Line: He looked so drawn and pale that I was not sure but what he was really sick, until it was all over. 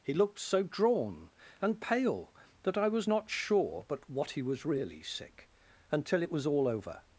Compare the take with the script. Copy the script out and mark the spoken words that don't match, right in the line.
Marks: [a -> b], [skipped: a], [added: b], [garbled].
He looked so drawn and pale that I was not sure but what he was really sick, until it was all over.